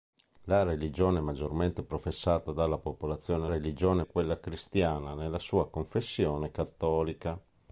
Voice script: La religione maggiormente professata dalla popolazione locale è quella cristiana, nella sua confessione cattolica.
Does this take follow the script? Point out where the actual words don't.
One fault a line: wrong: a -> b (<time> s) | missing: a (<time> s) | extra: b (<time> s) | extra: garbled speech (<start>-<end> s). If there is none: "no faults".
wrong: locale -> religione (3.5 s)